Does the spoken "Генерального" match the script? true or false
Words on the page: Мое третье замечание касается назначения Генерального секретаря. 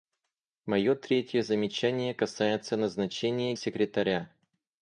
false